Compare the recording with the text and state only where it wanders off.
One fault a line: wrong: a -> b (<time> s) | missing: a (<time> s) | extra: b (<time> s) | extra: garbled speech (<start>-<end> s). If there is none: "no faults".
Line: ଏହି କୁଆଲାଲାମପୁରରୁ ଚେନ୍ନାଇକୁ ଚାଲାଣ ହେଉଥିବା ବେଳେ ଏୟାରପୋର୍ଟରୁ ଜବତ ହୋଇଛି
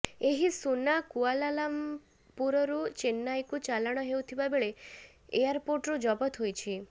extra: ସୁନା (0.5 s)